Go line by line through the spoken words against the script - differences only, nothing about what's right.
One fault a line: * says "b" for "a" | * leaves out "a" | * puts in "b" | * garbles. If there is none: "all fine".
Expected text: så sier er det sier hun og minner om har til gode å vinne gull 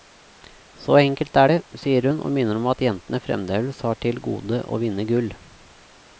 * says "enkelt" for "sier"
* puts in "at jentene fremdeles"